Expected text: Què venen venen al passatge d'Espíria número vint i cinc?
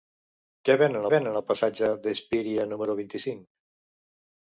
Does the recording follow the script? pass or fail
pass